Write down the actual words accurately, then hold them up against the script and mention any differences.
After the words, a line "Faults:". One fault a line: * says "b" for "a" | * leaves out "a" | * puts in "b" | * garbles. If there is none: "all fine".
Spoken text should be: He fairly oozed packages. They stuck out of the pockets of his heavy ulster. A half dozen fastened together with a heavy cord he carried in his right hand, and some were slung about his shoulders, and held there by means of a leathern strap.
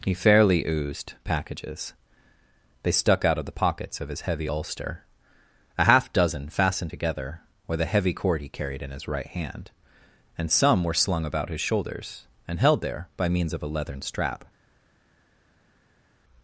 He fairly oozed packages. They stuck out of the pockets of his heavy ulster. A half dozen fastened together with a heavy cord he carried in his right hand, and some were slung about his shoulders, and held there by means of a leathern strap.
Faults:
all fine